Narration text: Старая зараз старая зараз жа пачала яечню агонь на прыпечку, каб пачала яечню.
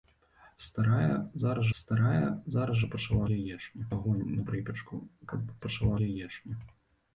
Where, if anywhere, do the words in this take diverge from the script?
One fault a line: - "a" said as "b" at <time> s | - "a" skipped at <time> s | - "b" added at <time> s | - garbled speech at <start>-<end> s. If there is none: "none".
none